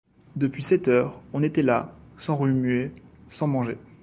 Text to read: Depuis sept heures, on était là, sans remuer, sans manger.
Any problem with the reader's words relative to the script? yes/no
no